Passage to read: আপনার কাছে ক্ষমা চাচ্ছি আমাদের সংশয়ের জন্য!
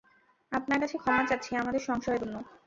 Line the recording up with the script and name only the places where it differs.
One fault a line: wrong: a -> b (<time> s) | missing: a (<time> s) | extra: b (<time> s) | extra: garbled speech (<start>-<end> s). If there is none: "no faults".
no faults